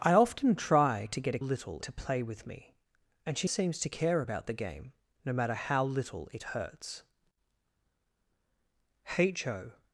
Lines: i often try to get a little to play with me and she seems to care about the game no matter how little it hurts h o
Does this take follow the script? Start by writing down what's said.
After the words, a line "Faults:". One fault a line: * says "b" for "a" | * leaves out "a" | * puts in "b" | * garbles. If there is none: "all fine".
i often try to get a little to play with me and she seems to care about the game no matter how little it hurts h o
Faults:
all fine